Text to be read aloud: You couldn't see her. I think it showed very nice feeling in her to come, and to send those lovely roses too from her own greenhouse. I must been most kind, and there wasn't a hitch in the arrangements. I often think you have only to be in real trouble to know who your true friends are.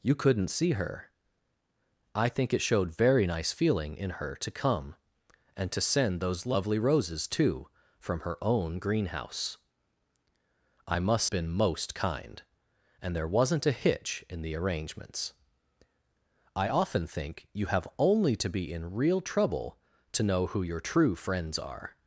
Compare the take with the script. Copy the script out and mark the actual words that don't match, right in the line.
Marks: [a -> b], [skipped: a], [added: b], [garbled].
You couldn't see her. I think it showed very nice feeling in her to come, and to send those lovely roses too from her own greenhouse. I must been most kind, and there wasn't a hitch in the arrangements. I often think you have only to be in real trouble to know who your true friends are.